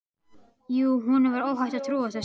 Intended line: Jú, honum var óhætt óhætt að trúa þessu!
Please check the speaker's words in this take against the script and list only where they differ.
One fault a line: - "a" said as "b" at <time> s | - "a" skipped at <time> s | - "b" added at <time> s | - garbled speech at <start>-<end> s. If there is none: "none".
- "óhætt" skipped at 1.8 s